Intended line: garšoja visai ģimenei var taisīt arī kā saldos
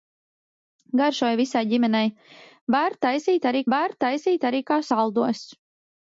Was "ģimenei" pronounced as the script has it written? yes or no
yes